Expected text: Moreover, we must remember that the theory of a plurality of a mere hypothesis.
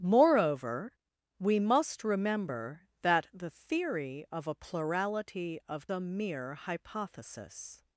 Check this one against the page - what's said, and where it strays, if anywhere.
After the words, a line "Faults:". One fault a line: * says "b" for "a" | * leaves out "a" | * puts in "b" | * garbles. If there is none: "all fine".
Moreover, we must remember that the theory of a plurality of a mere hypothesis.
Faults:
all fine